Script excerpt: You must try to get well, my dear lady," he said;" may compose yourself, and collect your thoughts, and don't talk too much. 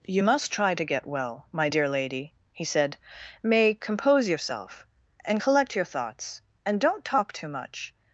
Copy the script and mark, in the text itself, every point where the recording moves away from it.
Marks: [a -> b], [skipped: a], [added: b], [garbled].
You must try to get well, my dear lady," he said;" may compose yourself, and collect your thoughts, and don't talk too much.